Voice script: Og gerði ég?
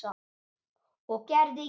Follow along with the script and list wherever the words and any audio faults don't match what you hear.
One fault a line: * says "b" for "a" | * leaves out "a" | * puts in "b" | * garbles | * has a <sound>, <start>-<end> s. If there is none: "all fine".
all fine